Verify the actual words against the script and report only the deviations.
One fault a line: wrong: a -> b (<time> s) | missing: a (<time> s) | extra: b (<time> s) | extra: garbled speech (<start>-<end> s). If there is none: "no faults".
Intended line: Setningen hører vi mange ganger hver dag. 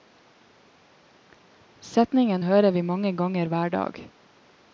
no faults